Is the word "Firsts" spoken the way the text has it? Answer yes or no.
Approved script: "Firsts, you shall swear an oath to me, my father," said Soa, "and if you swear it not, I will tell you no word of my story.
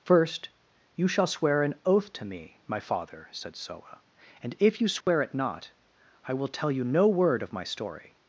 no